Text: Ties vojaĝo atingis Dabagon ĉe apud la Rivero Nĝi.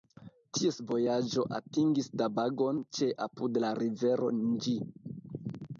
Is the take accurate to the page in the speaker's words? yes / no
yes